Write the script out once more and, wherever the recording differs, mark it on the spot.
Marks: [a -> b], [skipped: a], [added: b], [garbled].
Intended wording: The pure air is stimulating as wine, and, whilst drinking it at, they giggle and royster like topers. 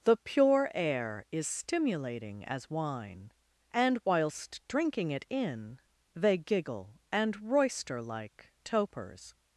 The pure air is stimulating as wine, and, whilst drinking it [at, -> in] they giggle and royster like topers.